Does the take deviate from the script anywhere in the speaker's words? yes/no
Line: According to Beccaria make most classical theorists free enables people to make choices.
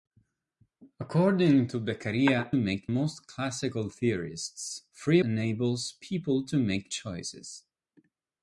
no